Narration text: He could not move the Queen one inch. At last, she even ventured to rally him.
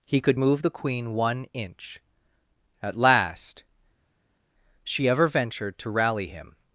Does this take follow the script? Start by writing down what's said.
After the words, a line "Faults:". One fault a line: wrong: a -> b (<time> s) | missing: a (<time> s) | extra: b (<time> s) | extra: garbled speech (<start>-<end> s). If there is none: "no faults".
He could move the Queen one inch. At last, she ever ventured to rally him.
Faults:
missing: not (0.4 s)
wrong: even -> ever (5.1 s)